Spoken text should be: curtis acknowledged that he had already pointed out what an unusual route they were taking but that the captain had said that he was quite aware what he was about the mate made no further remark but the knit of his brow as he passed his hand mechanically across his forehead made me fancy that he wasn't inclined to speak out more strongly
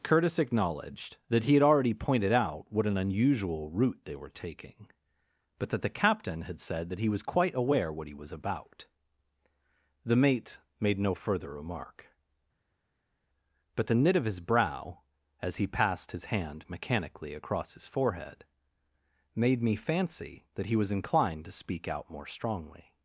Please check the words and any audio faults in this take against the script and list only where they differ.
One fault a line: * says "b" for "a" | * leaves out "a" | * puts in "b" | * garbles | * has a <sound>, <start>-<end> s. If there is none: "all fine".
* says "was" for "wasn't"